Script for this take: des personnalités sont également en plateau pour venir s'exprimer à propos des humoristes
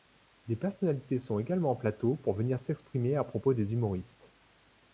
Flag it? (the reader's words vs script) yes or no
no